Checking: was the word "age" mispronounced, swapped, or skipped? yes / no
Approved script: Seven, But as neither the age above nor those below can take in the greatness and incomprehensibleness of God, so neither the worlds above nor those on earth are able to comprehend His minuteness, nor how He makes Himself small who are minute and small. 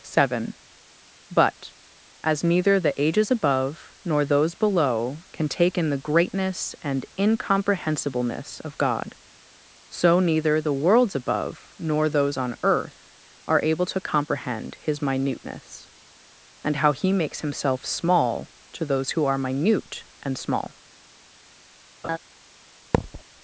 yes